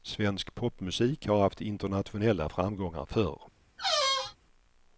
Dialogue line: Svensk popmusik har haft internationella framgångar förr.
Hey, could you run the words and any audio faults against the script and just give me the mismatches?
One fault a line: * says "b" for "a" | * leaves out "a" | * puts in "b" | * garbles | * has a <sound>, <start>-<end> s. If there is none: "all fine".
* has a squeak, 3.8-4.4 s